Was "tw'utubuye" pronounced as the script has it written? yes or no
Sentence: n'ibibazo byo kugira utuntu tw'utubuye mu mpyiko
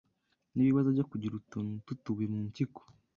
yes